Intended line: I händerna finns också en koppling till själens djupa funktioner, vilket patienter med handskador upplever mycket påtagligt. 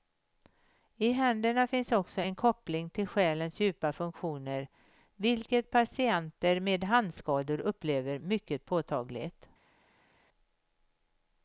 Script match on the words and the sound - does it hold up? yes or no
yes